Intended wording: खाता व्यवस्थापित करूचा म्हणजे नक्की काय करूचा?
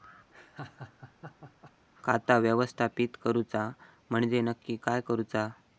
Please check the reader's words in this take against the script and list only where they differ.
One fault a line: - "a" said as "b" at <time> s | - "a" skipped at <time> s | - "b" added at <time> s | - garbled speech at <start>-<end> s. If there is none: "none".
none